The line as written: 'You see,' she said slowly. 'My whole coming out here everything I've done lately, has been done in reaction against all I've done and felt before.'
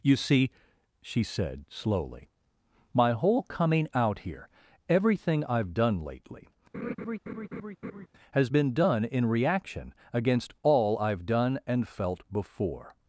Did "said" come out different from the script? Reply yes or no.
no